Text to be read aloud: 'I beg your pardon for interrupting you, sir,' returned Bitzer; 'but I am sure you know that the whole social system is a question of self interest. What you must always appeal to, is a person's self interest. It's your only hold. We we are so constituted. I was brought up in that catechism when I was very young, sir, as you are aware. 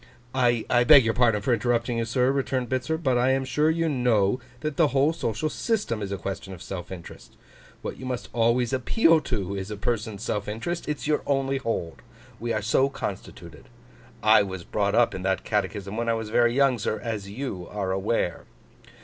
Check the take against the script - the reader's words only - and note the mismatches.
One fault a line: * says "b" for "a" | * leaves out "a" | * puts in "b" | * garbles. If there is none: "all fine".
* leaves out "we"